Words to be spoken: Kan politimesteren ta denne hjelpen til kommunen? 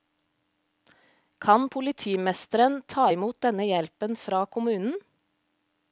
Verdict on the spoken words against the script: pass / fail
fail